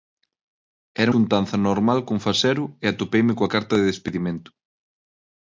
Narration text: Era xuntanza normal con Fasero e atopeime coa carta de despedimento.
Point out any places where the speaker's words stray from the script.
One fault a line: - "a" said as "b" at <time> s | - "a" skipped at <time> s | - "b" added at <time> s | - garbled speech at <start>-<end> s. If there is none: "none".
none